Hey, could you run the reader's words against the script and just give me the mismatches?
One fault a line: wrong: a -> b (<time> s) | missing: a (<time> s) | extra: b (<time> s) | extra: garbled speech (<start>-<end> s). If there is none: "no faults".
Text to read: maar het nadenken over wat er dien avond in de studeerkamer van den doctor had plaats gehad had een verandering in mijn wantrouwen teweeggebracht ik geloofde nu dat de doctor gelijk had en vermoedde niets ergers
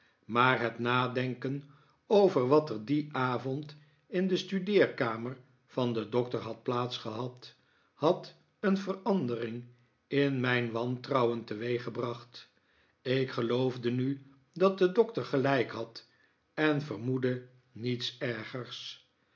no faults